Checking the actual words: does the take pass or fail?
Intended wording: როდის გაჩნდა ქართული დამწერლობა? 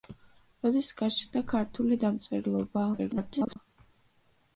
fail